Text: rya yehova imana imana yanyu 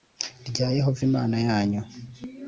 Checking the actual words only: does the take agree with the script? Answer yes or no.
no